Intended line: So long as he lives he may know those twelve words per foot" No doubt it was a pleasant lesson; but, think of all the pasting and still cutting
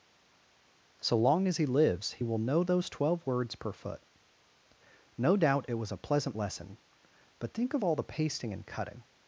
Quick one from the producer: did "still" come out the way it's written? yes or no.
no